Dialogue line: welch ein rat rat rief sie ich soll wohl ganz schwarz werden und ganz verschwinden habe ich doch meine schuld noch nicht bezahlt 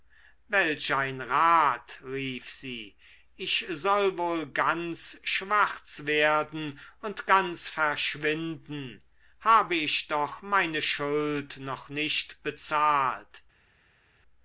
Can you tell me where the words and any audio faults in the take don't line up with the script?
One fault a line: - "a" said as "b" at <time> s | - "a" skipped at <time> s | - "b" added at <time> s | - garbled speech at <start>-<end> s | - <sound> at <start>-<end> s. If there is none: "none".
- "rat" skipped at 2.0 s